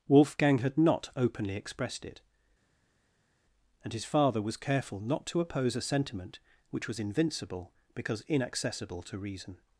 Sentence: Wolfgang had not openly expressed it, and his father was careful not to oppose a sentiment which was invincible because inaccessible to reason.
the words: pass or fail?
pass